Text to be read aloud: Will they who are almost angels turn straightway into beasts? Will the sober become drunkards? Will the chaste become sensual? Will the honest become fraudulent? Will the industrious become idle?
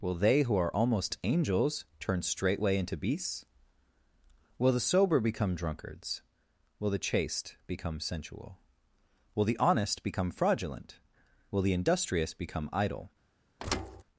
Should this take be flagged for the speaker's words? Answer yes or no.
no